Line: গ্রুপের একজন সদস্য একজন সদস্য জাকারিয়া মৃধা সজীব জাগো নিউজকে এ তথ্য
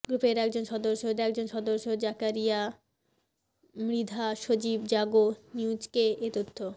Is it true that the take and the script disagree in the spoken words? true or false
false